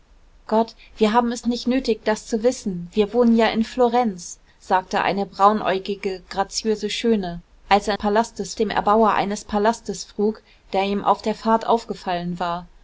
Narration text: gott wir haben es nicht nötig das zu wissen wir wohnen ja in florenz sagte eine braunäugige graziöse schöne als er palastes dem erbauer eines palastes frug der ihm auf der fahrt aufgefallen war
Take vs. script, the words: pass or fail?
pass